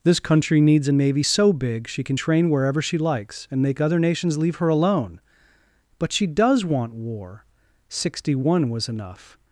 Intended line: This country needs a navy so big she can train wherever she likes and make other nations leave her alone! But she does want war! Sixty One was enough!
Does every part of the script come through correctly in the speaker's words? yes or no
yes